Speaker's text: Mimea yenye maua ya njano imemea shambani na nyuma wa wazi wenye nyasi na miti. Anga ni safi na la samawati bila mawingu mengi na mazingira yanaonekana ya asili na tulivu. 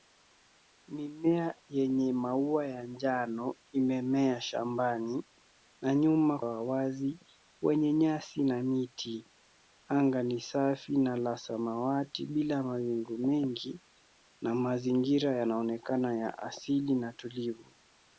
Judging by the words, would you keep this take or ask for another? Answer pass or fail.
pass